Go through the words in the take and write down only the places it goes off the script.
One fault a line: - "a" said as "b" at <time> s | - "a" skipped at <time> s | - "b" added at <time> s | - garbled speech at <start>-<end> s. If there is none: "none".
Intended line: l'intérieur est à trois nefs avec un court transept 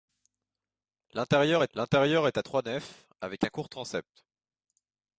- "l'intérieur est" added at 1.7 s